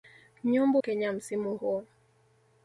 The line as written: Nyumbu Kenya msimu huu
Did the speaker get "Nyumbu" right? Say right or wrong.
right